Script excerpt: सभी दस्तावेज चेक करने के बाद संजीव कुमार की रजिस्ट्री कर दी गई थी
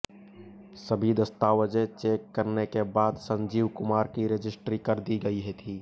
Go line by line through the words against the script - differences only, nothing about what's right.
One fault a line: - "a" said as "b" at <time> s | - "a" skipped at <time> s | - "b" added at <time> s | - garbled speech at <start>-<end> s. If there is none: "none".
none